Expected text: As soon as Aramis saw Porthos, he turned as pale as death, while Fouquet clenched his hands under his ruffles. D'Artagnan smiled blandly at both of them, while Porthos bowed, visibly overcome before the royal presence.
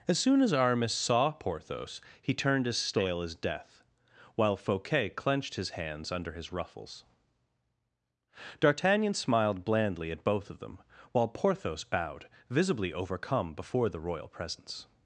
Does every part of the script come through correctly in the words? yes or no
no